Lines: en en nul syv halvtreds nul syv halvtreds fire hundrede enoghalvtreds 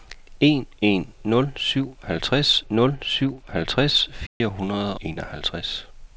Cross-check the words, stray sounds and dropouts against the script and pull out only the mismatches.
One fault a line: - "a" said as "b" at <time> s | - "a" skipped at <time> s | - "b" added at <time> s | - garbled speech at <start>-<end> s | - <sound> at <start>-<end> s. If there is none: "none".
- dropout at 4.3-4.4 s